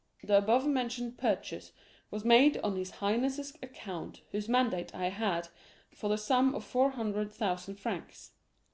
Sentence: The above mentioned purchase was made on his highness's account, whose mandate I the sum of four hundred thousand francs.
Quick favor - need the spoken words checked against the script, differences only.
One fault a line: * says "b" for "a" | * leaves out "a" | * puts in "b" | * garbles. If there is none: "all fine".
* puts in "had for"